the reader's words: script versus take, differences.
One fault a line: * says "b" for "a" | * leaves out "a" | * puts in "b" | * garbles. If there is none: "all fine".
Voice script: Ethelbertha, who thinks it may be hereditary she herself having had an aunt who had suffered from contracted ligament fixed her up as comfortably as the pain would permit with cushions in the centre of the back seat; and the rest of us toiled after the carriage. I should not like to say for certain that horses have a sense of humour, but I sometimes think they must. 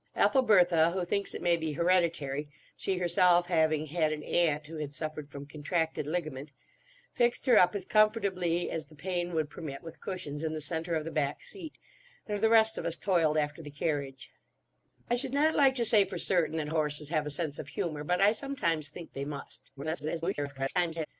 * garbles